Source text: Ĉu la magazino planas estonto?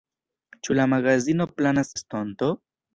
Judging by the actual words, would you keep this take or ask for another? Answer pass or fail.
pass